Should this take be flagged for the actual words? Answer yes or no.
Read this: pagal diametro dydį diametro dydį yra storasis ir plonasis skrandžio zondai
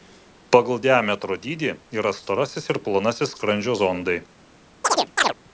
yes